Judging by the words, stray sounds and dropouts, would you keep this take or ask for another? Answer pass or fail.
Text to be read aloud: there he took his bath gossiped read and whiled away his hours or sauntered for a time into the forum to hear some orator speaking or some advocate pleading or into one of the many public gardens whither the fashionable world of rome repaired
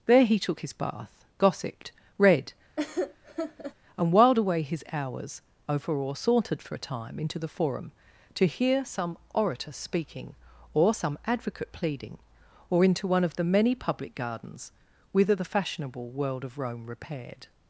fail